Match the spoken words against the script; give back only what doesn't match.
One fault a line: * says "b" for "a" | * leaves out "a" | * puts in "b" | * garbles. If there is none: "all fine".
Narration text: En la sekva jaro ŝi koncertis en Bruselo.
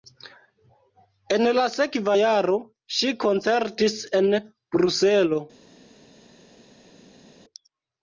all fine